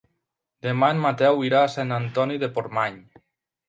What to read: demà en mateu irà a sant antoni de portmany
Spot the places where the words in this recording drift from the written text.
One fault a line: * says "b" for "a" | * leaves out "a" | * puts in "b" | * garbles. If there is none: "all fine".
all fine